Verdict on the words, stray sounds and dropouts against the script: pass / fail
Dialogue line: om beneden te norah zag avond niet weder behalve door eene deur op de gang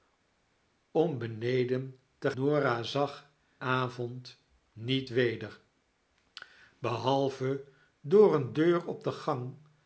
pass